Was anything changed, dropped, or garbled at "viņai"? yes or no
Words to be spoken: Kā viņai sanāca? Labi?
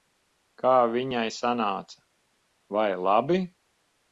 no